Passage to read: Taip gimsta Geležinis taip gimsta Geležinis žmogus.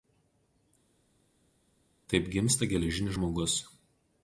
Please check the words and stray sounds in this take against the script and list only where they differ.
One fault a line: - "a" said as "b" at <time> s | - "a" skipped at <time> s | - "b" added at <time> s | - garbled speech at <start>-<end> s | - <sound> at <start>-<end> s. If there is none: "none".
- "taip gimsta Geležinis" skipped at 3.2 s